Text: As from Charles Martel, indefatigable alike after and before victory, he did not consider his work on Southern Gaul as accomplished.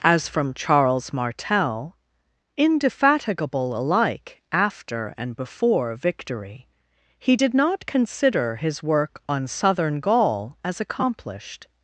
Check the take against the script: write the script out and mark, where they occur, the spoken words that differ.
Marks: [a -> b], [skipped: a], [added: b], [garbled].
As from Charles Martel, indefatigable alike after and before victory, he did not consider his work on Southern Gaul as accomplished.